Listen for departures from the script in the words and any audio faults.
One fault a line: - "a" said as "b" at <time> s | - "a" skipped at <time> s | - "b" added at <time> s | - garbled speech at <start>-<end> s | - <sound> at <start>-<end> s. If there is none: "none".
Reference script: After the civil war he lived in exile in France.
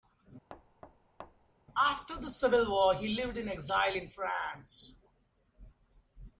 - thud at 0.5-1.5 s